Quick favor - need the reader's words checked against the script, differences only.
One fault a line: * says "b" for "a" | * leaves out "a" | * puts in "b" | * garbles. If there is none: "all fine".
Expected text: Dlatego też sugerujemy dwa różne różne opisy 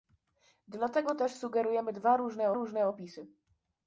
all fine